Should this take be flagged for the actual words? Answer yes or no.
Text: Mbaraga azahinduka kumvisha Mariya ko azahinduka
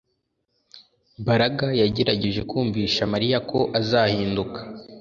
yes